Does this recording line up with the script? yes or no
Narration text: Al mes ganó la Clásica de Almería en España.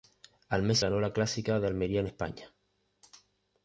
yes